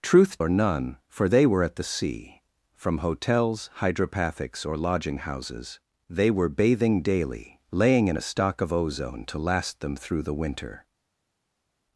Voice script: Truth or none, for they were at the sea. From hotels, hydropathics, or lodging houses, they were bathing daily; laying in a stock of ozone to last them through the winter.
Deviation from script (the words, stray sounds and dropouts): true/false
false